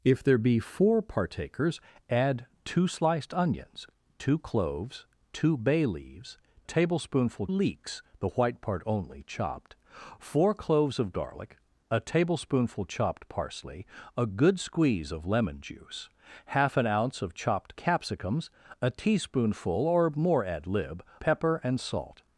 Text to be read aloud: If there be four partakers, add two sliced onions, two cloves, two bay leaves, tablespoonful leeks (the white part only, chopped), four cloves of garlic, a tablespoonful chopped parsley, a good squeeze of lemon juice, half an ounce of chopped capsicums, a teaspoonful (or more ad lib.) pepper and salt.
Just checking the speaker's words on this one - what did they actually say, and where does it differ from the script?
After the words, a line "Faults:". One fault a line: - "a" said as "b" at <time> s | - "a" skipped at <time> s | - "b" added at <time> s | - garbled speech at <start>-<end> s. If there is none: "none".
If there be four partakers, add two sliced onions, two cloves, two bay leaves, tablespoonful leeks (the white part only, chopped), four cloves of garlic, a tablespoonful chopped parsley, a good squeeze of lemon juice, half an ounce of chopped capsicums, a teaspoonful (or more ad lib.) pepper and salt.
Faults:
none